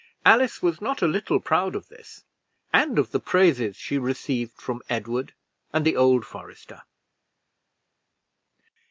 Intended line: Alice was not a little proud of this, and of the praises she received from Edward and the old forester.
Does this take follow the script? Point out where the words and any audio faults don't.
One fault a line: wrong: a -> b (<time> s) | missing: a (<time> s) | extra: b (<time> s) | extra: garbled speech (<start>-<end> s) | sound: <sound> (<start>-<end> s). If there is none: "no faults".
no faults